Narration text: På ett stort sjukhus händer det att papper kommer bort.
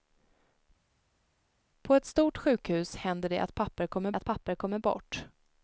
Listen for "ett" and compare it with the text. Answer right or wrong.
right